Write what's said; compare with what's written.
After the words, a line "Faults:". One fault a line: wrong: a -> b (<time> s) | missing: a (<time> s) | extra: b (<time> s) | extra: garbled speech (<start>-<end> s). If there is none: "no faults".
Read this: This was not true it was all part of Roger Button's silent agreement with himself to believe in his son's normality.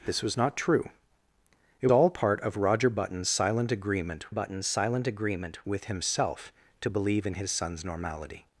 This was not true it all part of Roger Button's silent agreement Button's silent agreement with himself to believe in his son's normality.
Faults:
missing: was (1.9 s)
extra: Button's silent agreement (4.3 s)